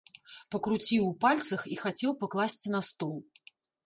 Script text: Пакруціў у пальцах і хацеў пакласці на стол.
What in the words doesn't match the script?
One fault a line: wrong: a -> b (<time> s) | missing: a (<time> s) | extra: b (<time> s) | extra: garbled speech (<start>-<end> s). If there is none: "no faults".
no faults